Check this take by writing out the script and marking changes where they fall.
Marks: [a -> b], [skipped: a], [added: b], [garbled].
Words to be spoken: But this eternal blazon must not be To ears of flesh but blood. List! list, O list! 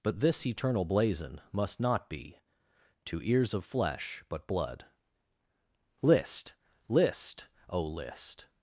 But this eternal blazon must not be To ears of flesh but blood. List! list, O list!